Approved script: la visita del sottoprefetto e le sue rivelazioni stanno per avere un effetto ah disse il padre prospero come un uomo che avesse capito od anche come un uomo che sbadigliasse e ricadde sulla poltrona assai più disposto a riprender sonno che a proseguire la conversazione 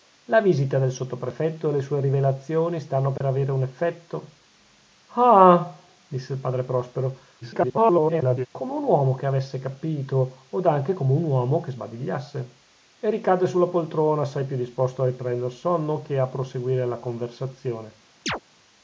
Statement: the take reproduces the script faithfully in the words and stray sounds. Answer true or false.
false